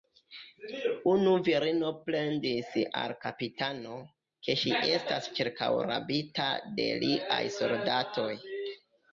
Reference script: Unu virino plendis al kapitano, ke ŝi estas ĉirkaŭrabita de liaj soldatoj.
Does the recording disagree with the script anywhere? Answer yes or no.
no